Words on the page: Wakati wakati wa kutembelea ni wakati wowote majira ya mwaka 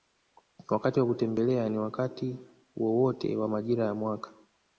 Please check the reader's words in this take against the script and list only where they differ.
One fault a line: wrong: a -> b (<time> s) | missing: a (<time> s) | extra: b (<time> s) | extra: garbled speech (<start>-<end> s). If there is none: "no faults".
missing: wakati (1.0 s)
extra: wa (3.4 s)